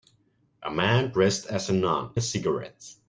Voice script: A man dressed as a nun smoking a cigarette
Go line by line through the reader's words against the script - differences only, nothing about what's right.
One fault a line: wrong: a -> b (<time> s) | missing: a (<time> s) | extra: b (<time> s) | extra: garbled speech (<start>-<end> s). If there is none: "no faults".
missing: smoking (2.1 s)